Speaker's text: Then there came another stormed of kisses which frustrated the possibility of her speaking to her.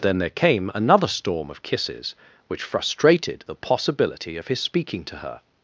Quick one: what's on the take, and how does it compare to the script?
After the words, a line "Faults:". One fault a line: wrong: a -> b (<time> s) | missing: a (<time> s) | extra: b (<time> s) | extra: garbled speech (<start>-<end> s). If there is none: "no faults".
Then there came another storm of kisses which frustrated the possibility of his speaking to her.
Faults:
wrong: stormed -> storm (1.1 s)
wrong: her -> his (4.5 s)